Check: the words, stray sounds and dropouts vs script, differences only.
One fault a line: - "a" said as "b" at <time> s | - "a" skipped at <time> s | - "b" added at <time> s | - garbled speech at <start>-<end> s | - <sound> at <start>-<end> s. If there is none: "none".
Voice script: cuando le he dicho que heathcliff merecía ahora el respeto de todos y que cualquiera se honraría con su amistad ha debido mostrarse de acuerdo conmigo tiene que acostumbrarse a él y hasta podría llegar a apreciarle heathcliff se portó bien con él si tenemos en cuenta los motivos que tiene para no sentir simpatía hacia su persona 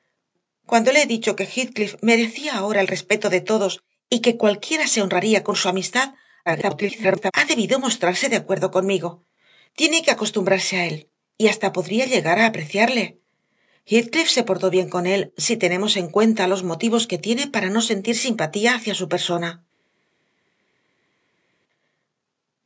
- garbled speech at 6.5-7.3 s